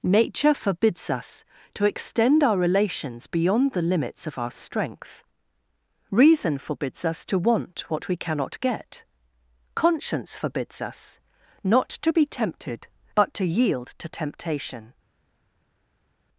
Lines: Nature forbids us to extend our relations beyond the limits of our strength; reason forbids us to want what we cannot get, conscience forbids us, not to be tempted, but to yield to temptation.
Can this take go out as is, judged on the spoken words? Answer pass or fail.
pass